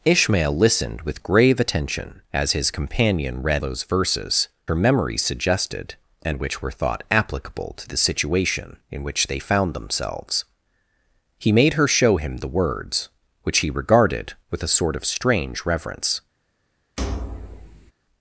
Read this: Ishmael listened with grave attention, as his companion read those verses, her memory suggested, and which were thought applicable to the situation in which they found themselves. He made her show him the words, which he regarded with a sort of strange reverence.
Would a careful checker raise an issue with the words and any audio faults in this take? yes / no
yes